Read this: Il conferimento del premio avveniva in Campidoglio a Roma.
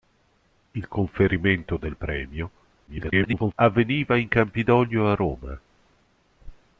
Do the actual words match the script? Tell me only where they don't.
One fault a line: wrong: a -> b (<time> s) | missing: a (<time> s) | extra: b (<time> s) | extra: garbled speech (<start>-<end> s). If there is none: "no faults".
extra: garbled speech (2.9-3.5 s)